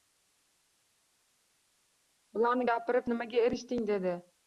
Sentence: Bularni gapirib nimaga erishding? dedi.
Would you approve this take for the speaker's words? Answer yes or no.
yes